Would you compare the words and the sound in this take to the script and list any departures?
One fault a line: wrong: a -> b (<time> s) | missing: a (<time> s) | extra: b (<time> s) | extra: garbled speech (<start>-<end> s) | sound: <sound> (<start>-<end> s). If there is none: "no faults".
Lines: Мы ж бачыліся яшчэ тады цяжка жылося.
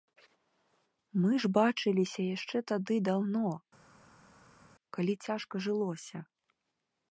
extra: даўно калі (3.1 s)